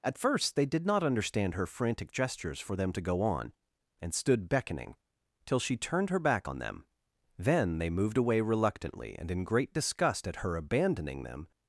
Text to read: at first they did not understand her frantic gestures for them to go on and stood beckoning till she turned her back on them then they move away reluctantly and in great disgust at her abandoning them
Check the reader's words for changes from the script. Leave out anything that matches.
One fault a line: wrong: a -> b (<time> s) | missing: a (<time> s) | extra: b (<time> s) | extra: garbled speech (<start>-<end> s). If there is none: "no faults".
wrong: move -> moved (7.9 s)